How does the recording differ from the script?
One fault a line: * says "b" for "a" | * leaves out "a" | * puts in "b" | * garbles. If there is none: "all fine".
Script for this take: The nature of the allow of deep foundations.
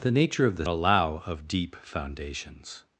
all fine